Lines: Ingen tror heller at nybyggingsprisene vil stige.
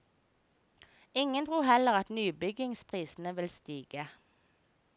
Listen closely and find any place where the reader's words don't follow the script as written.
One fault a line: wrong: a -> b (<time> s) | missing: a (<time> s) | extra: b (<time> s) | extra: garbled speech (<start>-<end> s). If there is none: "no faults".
no faults